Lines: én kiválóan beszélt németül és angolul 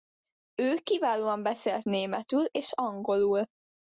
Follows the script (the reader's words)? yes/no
no